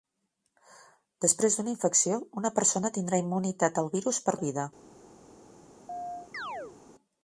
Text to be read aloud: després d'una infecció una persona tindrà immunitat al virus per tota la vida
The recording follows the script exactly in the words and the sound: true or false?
false